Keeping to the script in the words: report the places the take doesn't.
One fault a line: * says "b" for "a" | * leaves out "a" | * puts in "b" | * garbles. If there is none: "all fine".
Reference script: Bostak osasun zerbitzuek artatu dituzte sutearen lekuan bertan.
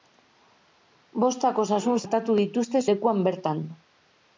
* leaves out "zerbitzuek"
* leaves out "sutearen"